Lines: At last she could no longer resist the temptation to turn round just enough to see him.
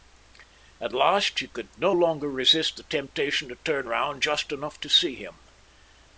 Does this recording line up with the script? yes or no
yes